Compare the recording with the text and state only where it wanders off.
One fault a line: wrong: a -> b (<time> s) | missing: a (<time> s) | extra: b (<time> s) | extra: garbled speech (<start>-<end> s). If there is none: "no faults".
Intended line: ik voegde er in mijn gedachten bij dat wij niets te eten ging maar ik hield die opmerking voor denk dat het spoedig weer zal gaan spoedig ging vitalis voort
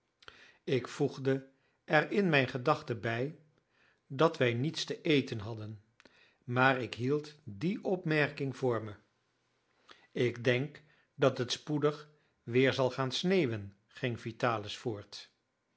wrong: ging -> hadden (5.4 s)
extra: me ik (8.8 s)
wrong: spoedig -> sneeuwen (13.1 s)